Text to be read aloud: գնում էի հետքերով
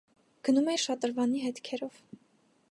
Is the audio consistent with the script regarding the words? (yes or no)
no